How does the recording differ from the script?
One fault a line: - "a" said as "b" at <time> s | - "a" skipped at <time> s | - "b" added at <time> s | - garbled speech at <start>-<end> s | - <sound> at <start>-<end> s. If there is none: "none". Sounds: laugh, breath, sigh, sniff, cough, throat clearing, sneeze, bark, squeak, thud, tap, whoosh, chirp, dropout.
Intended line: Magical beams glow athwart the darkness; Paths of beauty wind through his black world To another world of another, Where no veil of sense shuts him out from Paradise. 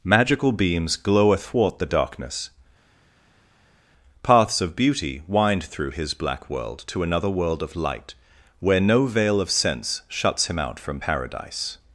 - "another" said as "light" at 7.7 s